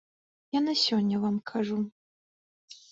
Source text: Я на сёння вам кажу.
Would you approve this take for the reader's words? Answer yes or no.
yes